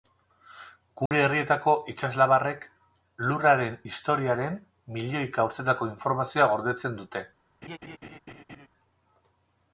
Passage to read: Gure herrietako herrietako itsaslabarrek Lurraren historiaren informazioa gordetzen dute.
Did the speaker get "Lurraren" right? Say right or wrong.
right